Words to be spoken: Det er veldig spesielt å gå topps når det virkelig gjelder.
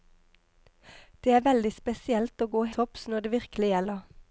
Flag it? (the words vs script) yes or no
no